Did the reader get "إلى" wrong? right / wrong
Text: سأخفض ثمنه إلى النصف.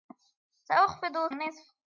wrong